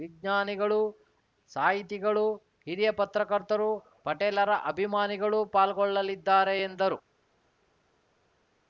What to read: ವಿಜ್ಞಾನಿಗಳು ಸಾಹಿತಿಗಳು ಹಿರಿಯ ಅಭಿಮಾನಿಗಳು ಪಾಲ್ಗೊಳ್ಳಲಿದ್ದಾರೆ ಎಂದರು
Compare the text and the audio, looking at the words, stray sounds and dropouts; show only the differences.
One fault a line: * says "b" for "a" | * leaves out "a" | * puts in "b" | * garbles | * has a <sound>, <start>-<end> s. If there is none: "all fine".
* puts in "ಪತ್ರಕರ್ತರು ಪಟೇಲರ"